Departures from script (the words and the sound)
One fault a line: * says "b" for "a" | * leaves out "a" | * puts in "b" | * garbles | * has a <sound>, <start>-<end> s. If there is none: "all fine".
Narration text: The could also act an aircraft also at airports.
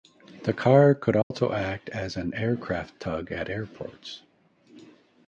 * puts in "car"
* has a dropout, 1.2-1.3 s
* puts in "as"
* says "tug" for "also"